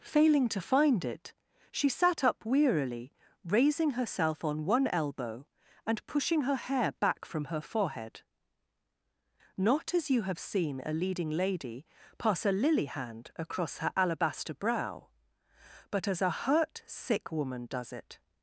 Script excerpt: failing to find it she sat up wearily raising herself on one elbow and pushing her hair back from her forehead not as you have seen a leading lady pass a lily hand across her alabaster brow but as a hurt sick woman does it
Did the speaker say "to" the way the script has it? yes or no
yes